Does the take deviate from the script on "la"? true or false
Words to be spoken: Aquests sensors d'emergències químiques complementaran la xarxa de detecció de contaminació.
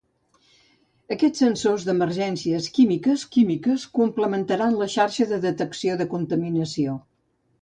false